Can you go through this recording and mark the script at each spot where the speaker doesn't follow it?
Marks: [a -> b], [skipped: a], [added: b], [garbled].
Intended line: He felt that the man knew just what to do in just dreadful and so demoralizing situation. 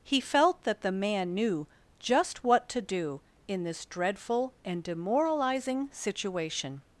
He felt that the man knew just what to do in [just -> this] dreadful and [skipped: so] demoralizing situation.